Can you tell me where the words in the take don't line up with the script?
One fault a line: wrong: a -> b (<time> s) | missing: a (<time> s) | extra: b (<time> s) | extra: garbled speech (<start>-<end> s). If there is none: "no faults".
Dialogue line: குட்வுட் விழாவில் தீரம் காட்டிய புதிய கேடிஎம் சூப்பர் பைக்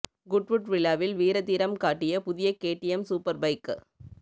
extra: வீர (1.1 s)